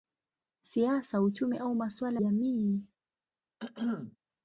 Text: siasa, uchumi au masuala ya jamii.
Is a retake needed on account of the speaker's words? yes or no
yes